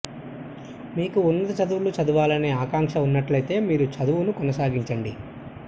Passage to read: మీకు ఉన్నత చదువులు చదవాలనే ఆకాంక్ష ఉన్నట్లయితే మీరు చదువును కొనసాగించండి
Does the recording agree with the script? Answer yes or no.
yes